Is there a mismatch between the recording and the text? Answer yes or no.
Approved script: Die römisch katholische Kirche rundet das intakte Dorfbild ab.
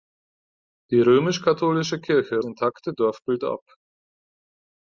yes